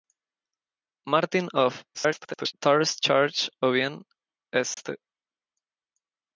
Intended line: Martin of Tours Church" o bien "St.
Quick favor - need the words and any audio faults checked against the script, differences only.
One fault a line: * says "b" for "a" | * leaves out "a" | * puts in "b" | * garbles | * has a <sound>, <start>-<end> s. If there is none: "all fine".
* garbles
* has a dropout, 4.7-4.8 s